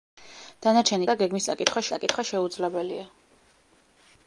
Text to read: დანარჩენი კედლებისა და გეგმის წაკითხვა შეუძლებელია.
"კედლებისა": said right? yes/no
no